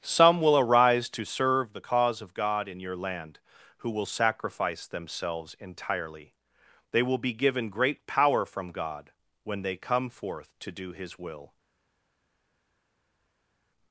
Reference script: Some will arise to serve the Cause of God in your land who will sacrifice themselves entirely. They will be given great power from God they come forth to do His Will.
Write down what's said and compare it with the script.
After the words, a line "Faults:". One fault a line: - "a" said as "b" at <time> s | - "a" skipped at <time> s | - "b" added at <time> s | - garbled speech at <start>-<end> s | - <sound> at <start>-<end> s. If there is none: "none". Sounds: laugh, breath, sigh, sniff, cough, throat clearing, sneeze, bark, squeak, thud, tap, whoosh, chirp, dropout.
Some will arise to serve the Cause of God in your land who will sacrifice themselves entirely. They will be given great power from God when they come forth to do His Will.
Faults:
- "when" added at 9.4 s